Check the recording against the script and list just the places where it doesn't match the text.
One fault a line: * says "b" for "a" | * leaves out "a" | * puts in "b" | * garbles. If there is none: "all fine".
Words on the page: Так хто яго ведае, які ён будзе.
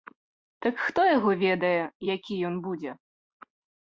all fine